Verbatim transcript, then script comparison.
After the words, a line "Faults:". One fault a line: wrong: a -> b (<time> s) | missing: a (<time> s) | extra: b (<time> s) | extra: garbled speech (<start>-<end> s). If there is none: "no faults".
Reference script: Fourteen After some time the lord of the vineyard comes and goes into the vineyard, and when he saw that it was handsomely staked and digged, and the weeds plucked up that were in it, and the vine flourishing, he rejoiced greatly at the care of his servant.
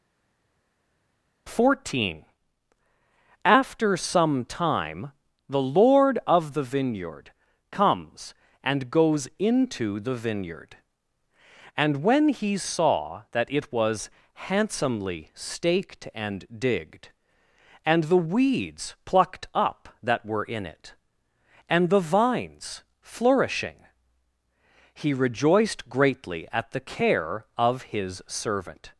Fourteen After some time the lord of the vineyard comes and goes into the vineyard, and when he saw that it was handsomely staked and digged, and the weeds plucked up that were in it, and the vines flourishing, he rejoiced greatly at the care of his servant.
Faults:
wrong: vine -> vines (22.0 s)